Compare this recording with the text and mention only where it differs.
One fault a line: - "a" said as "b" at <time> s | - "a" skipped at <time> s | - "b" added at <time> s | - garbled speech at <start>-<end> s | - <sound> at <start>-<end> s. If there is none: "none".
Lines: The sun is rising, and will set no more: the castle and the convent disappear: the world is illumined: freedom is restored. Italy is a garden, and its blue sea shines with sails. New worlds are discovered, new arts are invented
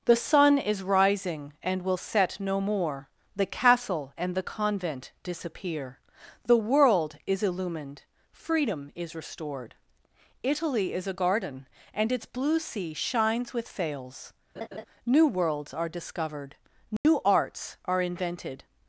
- laugh at 14.6-14.8 s
- dropout at 17.0-17.0 s